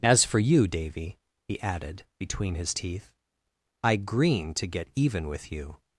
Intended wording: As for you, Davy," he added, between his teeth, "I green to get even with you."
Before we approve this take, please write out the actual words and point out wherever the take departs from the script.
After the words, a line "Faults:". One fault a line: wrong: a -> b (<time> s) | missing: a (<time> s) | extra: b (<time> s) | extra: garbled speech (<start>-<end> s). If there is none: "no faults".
As for you, Davy," he added, between his teeth, "I green to get even with you."
Faults:
no faults